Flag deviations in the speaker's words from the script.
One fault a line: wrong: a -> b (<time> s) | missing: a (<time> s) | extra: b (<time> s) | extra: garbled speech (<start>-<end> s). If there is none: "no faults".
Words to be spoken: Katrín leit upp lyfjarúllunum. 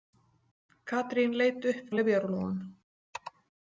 no faults